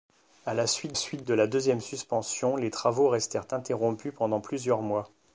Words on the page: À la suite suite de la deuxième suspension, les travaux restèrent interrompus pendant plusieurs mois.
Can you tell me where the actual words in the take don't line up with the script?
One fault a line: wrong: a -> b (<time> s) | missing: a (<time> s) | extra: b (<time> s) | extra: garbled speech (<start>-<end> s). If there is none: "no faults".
no faults